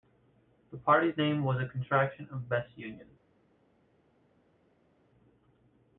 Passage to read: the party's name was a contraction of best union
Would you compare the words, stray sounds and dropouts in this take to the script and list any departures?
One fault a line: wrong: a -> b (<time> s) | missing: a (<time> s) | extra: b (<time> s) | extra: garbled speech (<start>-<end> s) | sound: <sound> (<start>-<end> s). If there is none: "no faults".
no faults